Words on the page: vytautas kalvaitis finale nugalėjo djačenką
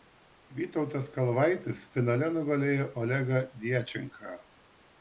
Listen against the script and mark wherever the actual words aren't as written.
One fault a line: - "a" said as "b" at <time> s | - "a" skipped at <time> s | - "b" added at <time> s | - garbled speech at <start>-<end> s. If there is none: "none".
- "olegą" added at 3.0 s